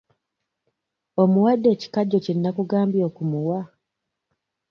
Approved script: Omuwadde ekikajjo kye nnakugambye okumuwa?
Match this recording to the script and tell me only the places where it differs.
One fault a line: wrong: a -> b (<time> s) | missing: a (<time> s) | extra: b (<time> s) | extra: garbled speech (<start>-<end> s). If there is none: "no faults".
no faults